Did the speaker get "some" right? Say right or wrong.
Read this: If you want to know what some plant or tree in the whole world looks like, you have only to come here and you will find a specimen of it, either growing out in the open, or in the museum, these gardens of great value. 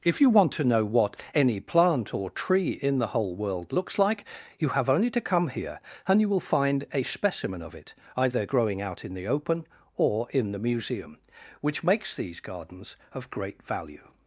wrong